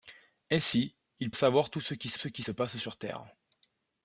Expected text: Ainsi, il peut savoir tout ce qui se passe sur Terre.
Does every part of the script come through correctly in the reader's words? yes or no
no